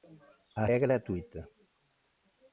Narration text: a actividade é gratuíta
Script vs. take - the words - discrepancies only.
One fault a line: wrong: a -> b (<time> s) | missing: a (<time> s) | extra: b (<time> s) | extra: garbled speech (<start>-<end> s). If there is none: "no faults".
missing: actividade (0.6 s)